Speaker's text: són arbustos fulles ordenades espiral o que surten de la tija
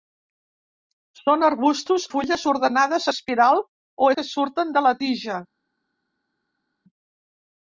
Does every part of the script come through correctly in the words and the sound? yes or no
yes